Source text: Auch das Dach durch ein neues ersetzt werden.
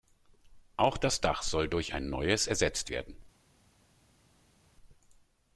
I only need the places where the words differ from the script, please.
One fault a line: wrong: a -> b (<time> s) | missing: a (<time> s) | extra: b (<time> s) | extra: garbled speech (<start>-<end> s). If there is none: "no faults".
extra: soll (1.4 s)